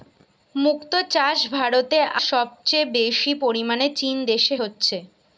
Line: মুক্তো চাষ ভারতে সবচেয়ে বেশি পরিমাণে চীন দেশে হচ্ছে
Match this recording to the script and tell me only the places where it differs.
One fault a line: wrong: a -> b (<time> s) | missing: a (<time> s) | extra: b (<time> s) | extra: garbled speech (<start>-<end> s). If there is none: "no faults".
no faults